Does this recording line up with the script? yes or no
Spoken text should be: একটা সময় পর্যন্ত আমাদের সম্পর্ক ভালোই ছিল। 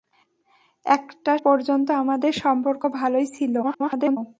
no